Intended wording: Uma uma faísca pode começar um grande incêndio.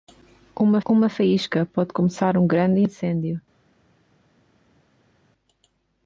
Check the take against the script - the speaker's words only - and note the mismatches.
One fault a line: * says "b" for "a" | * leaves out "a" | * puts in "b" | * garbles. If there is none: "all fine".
all fine